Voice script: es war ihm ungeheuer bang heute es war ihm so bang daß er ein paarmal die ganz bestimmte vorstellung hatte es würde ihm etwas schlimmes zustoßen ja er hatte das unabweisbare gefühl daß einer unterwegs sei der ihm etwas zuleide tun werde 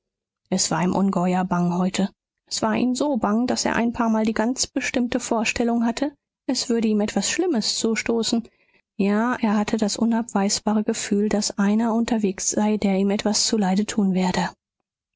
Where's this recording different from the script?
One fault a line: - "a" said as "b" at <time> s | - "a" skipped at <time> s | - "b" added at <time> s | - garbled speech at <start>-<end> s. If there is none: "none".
none